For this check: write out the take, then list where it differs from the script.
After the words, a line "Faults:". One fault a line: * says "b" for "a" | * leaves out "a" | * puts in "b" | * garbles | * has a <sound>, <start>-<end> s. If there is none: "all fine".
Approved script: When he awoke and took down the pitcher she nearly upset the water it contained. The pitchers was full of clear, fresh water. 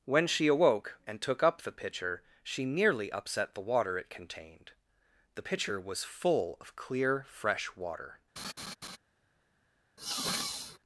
When she awoke and took up the pitcher she nearly upset the water it contained. The pitcher was full of clear, fresh water.
Faults:
* says "she" for "he"
* says "up" for "down"
* says "pitcher" for "pitchers"
* has a laugh, 8.4-9.0 s
* has a sniff, 10.0-10.8 s